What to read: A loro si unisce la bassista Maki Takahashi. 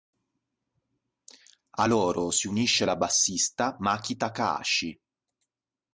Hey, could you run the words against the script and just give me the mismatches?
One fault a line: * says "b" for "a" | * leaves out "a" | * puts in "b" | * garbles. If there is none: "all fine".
all fine